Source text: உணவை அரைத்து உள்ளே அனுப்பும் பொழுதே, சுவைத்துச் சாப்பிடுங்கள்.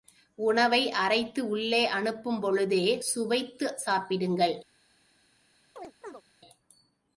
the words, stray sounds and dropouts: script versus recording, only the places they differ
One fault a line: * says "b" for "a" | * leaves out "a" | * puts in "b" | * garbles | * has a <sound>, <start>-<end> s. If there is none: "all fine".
* has a chirp, 5.8-6.2 s